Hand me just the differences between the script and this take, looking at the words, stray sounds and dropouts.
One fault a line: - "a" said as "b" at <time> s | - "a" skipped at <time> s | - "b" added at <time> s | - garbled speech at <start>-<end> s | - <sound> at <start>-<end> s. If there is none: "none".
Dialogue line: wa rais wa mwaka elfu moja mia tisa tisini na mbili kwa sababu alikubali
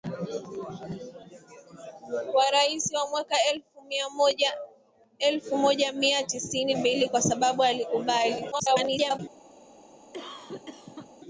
- "na" skipped at 6.7 s
- garbled speech at 8.5-9.2 s
- cough at 10.1-11.1 s